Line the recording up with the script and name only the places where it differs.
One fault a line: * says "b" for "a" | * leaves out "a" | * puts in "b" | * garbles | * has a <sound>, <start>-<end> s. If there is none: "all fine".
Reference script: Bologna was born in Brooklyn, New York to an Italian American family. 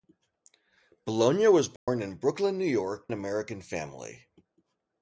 * has a dropout, 1.8-1.9 s
* leaves out "to an Italian"